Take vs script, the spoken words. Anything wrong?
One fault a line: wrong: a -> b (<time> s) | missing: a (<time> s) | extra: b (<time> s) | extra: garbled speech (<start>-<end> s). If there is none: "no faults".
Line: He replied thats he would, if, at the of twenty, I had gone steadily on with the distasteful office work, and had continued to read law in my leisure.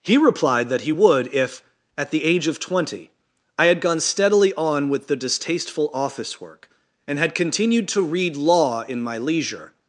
wrong: thats -> that (0.7 s)
extra: age (2.2 s)